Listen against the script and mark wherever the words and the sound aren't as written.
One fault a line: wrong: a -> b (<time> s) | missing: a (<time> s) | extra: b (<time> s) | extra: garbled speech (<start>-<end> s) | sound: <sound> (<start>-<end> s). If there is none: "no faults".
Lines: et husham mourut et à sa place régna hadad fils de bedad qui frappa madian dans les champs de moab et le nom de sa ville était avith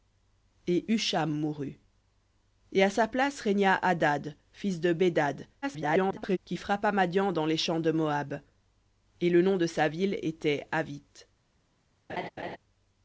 extra: garbled speech (5.6-6.4 s)
sound: laugh (12.1-12.6 s)